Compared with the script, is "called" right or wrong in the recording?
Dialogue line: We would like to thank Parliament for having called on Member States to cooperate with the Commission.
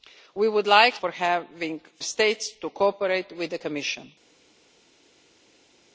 wrong